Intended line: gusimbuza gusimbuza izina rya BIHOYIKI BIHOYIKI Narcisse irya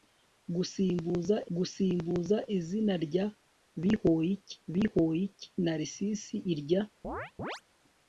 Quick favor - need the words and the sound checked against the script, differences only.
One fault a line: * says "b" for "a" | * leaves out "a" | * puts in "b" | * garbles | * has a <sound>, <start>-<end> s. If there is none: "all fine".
* has a chirp, 7.0-7.6 s